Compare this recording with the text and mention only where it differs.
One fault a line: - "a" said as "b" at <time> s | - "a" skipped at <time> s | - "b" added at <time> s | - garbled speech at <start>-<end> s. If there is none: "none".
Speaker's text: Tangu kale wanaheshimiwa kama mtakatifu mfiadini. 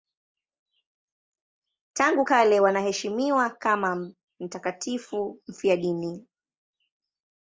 none